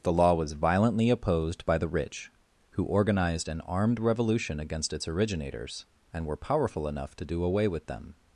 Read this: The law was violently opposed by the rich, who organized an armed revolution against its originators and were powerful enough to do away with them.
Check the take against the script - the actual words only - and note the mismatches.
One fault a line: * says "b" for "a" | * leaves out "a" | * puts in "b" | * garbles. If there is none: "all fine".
all fine